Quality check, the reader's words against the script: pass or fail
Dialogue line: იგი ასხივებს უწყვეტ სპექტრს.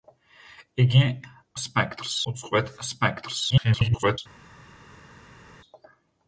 fail